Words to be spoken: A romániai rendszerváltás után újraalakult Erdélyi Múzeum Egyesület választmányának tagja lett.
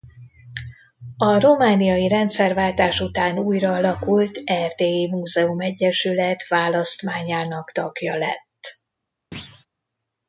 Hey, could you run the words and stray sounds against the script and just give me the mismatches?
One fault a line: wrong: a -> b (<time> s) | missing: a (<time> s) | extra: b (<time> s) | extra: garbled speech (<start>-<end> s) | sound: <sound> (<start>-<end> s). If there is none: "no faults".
sound: thud (9.3-9.7 s)